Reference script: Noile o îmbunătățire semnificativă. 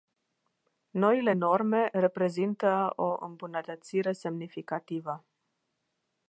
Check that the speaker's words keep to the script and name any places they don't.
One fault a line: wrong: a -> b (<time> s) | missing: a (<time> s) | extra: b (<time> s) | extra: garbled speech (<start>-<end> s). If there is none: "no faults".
extra: norme reprezintă (1.3 s)